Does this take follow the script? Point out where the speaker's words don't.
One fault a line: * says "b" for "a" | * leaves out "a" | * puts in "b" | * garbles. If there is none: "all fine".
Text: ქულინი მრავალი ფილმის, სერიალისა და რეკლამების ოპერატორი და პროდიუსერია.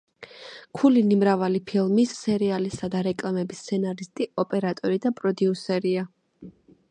* puts in "სცენარისტი"